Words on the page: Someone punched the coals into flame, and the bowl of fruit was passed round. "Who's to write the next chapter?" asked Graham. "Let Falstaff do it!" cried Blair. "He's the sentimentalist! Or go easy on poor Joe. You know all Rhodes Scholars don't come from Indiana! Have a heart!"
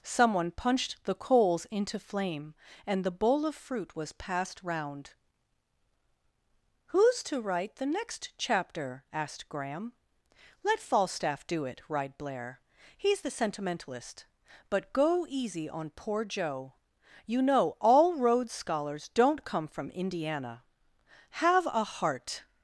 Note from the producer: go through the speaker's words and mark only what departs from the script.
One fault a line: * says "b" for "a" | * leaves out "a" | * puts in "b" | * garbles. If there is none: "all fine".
* says "But" for "Or"